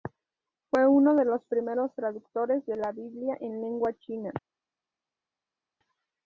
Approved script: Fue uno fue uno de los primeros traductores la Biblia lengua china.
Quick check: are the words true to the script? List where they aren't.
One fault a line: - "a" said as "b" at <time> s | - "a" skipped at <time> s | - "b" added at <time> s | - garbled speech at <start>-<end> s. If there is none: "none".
- "fue uno" skipped at 1.1 s
- "de" added at 2.6 s
- "en" added at 3.4 s